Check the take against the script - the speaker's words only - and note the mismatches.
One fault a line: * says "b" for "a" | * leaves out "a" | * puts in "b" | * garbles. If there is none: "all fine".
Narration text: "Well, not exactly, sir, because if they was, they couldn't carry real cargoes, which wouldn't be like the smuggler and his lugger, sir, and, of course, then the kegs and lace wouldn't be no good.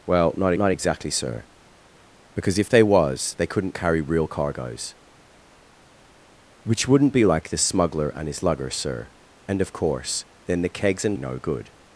* puts in "not"
* leaves out "lace wouldn't be"